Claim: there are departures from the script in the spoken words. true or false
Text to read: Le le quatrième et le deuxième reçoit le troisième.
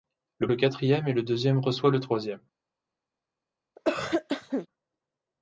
false